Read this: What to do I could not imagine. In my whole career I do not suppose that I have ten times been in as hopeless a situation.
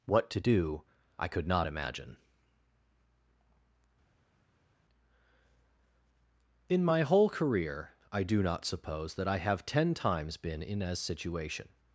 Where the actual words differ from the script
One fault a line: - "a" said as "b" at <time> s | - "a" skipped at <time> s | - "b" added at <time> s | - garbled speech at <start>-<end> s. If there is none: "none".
- "hopeless a" skipped at 11.0 s